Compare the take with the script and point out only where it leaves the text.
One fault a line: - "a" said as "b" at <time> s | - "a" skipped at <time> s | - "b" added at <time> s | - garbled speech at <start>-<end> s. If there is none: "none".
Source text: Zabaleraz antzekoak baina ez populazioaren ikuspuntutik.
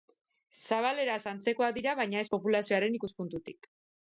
- "dira" added at 1.8 s